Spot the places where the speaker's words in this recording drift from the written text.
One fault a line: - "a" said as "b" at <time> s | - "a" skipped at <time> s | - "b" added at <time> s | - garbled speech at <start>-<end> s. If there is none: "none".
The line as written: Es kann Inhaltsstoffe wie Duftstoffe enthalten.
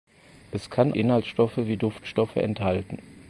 none